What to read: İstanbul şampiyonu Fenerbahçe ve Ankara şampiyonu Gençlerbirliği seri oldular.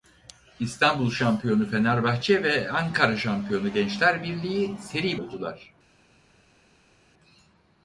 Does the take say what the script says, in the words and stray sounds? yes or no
yes